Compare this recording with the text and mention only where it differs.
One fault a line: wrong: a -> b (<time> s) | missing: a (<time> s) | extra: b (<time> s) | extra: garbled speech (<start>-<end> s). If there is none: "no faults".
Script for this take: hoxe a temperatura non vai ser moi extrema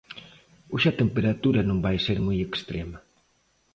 no faults